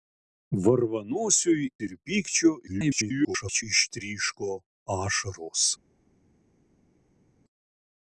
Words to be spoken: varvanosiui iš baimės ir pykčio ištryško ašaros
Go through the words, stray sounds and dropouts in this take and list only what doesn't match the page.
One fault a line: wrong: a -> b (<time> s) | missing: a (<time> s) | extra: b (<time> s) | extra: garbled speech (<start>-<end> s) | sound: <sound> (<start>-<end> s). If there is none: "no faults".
missing: iš baimės (1.7 s)
extra: garbled speech (2.7-3.6 s)